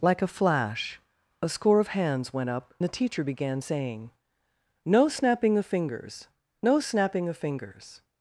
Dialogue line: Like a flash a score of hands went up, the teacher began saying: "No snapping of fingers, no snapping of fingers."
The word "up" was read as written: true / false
true